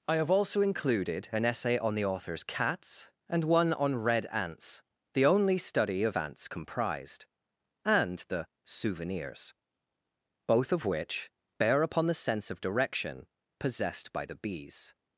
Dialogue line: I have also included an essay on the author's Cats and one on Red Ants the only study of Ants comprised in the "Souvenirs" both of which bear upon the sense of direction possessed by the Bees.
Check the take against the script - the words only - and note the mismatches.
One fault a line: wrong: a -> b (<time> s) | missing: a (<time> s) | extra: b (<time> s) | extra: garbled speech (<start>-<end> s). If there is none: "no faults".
wrong: in -> and (7.8 s)